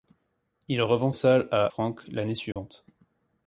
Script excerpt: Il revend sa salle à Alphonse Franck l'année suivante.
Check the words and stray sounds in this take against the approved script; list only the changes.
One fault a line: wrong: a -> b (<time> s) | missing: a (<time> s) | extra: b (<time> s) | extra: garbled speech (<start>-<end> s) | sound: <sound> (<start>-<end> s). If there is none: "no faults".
missing: sa (1.1 s)
missing: Alphonse (1.7 s)
sound: dropout (2.5-2.6 s)